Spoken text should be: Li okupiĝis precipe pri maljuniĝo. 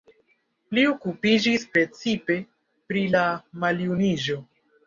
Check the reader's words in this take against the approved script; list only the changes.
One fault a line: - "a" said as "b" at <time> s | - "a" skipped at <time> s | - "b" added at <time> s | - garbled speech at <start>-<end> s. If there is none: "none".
- "la" added at 3.2 s